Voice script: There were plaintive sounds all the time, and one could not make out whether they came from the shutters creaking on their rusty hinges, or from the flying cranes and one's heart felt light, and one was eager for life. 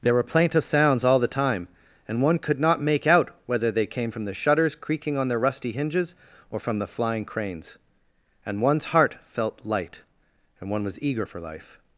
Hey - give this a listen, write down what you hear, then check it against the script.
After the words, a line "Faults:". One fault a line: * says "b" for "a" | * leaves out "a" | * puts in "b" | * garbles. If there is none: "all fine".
There were plaintive sounds all the time, and one could not make out whether they came from the shutters creaking on their rusty hinges, or from the flying cranes and one's heart felt light, and one was eager for life.
Faults:
all fine